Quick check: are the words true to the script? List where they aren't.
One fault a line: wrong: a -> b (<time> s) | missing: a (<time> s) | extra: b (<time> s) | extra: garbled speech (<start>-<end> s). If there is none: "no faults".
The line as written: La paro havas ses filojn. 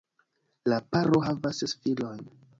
no faults